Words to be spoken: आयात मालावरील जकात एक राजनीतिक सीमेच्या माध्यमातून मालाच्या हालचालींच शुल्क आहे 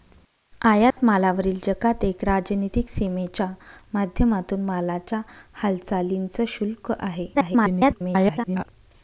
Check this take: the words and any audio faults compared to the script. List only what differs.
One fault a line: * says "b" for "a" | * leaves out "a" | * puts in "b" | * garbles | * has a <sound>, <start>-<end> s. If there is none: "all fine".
* has a dropout, 0.9-1.0 s
* garbles